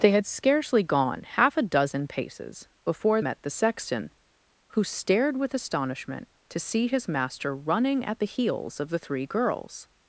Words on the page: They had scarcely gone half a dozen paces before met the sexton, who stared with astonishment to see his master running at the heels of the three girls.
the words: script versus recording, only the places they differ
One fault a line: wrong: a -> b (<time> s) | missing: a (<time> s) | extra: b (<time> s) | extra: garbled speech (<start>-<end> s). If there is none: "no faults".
no faults